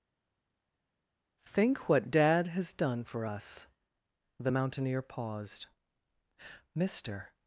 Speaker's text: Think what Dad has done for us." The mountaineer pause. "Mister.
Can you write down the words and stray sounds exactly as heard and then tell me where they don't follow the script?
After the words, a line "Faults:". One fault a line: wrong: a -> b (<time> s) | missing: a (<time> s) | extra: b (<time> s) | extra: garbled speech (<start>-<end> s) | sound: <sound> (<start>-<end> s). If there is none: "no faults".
Think what Dad has done for us." The mountaineer paused. "Mister.
Faults:
wrong: pause -> paused (5.0 s)